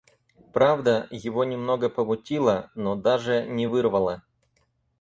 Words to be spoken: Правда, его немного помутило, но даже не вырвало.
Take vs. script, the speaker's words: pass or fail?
pass